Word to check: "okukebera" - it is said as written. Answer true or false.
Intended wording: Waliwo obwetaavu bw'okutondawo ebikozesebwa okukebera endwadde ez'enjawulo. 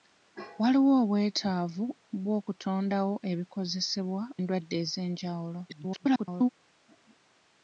false